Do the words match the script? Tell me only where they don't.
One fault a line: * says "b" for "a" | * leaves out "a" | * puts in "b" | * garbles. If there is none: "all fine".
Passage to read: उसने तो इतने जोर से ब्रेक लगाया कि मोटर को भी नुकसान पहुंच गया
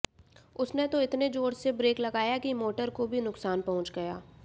all fine